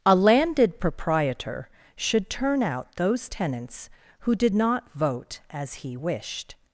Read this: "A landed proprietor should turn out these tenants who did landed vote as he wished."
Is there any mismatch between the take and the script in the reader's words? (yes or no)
yes